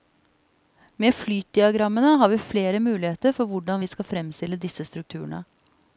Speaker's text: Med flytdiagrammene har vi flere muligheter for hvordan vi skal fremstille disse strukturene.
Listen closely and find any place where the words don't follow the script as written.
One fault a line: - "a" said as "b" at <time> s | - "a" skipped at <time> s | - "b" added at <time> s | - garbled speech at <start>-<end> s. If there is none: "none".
none